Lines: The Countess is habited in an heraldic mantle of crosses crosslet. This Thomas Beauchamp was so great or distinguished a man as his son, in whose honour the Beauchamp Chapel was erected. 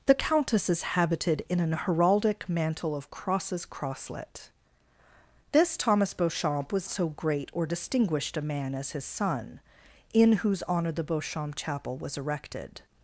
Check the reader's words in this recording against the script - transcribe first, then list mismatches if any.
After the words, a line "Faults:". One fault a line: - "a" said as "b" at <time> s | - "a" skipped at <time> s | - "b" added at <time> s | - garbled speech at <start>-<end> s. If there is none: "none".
The Countess is habited in an heraldic mantle of crosses crosslet. This Thomas Beauchamp was so great or distinguished a man as his son, in whose honour the Beauchamp Chapel was erected.
Faults:
none